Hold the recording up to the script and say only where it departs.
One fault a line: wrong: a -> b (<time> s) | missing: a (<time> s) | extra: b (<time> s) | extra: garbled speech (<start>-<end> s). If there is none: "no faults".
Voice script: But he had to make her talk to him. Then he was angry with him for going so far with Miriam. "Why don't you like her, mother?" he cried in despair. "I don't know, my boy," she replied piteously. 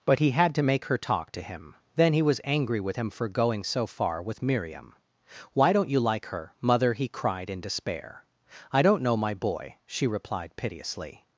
no faults